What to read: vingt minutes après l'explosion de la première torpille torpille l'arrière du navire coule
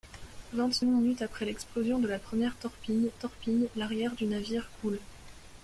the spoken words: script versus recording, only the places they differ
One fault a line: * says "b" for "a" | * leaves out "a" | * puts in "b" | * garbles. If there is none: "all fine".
all fine